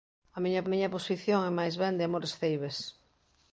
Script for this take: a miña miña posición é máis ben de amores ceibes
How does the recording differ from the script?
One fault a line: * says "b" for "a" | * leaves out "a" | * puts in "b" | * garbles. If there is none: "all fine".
all fine